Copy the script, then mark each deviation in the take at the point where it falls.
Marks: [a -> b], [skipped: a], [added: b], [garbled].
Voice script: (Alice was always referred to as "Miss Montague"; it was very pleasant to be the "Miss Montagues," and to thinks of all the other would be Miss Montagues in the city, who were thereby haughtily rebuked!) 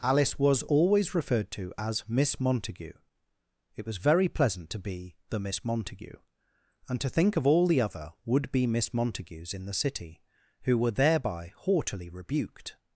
(Alice was always referred to as "Miss Montague"; it was very pleasant to be the "Miss [Montagues," -> Montague] and to [thinks -> think] of all the other would be Miss Montagues in the city, who were thereby haughtily rebuked!)